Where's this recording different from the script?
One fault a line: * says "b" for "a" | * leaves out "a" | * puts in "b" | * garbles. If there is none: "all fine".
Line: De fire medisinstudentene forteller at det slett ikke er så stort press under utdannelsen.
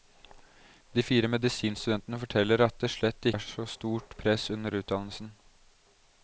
* leaves out "ikke"